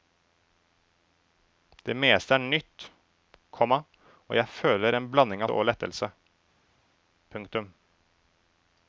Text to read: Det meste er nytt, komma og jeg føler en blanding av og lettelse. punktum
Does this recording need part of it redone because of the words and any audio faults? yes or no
no